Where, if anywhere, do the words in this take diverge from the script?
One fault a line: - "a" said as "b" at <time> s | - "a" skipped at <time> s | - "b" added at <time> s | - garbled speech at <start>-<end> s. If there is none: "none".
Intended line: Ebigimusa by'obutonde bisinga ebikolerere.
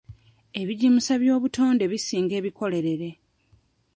none